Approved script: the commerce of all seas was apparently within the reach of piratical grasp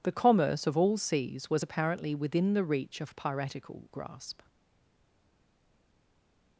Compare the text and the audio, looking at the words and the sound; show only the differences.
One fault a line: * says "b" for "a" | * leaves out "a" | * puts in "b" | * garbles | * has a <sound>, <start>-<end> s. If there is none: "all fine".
all fine